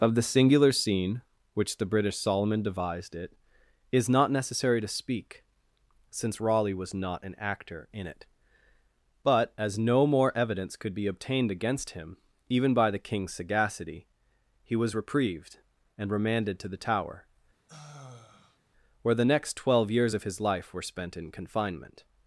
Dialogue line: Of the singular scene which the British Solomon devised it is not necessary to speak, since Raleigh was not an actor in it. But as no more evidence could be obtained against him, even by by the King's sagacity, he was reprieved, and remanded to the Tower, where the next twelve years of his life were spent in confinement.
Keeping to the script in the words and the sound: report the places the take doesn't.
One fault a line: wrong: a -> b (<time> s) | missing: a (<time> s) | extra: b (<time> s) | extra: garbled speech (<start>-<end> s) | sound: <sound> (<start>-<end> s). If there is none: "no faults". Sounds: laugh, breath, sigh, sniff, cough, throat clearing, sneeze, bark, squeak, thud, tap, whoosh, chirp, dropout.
missing: by (12.9 s)
sound: sigh (17.7-18.6 s)